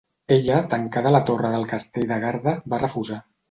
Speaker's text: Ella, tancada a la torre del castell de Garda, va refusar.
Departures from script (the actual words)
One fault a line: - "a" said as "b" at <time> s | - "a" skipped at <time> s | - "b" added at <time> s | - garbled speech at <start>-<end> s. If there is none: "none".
none